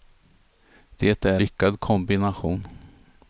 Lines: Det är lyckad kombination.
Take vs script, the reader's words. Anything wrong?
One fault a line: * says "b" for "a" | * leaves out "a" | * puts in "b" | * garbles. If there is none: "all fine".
all fine